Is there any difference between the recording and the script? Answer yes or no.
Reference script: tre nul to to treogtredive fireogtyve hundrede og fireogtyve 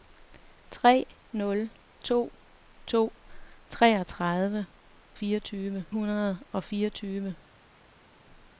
no